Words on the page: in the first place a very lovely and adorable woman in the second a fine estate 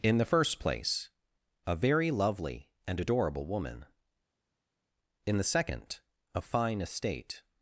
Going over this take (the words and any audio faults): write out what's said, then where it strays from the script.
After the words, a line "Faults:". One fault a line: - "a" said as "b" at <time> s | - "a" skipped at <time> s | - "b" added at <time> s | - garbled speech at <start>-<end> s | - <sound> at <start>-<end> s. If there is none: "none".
in the first place a very lovely and adorable woman in the second a fine estate
Faults:
none